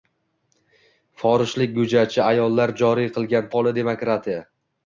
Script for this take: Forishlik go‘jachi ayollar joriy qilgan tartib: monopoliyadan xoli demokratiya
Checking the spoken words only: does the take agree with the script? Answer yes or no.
no